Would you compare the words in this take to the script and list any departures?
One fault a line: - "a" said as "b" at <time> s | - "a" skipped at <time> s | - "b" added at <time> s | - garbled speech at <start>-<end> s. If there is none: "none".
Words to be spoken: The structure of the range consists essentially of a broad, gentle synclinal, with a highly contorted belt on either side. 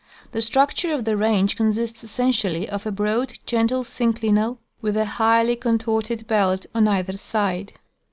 none